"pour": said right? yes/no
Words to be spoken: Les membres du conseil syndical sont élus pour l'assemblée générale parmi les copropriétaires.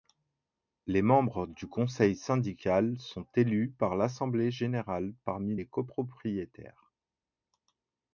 no